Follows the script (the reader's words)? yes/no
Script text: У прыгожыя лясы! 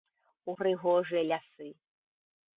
yes